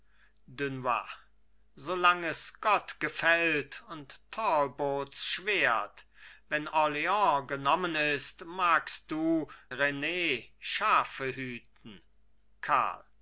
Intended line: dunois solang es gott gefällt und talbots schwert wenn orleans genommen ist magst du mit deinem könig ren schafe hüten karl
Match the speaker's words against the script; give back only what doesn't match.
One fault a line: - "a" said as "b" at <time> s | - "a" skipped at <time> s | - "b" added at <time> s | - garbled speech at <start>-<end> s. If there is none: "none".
- "mit deinem könig" skipped at 9.5 s